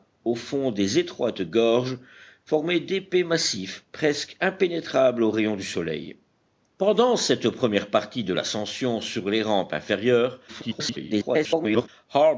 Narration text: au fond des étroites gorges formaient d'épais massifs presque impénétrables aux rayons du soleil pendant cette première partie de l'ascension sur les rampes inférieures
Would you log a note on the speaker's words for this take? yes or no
yes